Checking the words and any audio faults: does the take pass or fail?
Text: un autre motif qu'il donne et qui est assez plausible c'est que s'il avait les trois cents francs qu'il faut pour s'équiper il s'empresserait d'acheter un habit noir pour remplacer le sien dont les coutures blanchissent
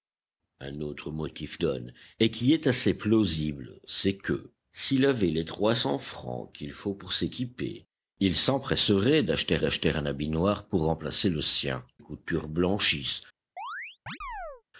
fail